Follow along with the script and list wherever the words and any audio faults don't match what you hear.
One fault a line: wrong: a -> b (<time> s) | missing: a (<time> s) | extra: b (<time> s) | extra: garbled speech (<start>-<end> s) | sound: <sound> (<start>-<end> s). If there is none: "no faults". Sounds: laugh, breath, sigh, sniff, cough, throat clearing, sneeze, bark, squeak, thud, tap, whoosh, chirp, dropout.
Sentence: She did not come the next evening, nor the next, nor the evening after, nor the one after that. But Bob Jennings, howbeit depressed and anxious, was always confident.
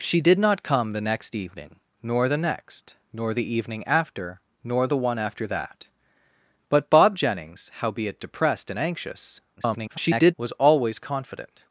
extra: garbled speech (9.6-10.3 s)